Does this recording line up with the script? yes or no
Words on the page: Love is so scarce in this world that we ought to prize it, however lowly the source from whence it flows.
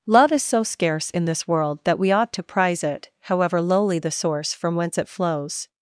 yes